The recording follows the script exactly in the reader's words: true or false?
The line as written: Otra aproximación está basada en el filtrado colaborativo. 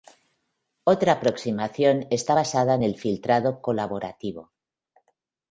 true